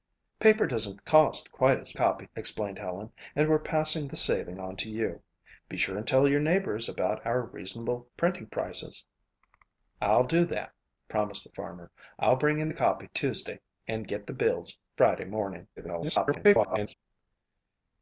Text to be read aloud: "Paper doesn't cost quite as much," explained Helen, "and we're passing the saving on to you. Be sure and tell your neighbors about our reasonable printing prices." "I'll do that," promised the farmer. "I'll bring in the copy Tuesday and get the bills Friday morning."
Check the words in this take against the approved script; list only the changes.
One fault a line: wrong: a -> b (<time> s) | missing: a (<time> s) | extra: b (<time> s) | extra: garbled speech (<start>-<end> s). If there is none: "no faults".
wrong: much -> copy (1.9 s)
extra: garbled speech (15.8-16.9 s)